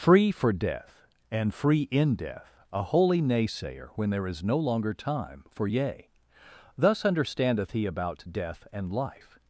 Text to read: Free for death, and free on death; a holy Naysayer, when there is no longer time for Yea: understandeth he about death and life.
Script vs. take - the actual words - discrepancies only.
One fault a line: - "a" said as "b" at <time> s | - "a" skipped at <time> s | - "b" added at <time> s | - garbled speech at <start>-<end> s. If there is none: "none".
- "on" said as "in" at 1.9 s
- "thus" added at 6.8 s